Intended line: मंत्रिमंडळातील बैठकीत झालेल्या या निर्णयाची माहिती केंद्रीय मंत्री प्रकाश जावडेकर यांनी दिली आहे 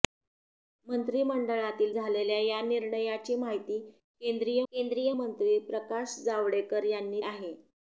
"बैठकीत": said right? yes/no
no